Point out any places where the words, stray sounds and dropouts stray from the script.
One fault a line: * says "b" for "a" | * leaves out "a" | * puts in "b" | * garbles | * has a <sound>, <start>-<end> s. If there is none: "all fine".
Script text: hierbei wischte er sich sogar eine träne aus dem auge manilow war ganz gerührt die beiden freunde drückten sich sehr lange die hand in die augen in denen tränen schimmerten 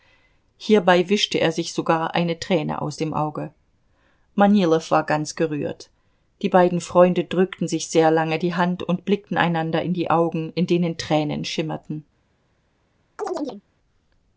* puts in "und blickten einander"
* has a chirp, 13.2-13.6 s